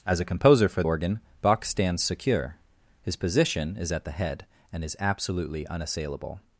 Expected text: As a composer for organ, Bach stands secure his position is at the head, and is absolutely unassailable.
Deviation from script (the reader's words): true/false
false